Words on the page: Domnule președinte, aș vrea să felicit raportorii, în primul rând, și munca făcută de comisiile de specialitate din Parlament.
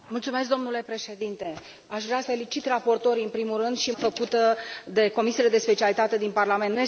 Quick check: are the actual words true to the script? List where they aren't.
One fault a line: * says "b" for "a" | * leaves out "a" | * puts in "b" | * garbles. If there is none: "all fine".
* leaves out "să"
* leaves out "munca"